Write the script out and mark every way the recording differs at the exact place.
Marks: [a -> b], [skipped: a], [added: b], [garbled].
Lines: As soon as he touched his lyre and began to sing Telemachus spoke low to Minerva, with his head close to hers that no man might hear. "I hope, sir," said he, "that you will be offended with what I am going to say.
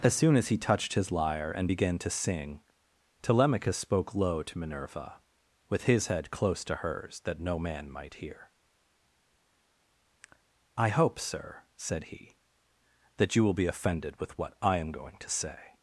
As soon as he touched his lyre and began to sing Telemachus spoke low to Minerva, with his head close to hers that no man might hear. "I hope, sir," said he, "that you will be offended with what I am going to say.